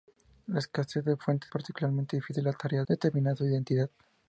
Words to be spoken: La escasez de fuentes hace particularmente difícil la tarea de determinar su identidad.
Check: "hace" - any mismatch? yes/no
yes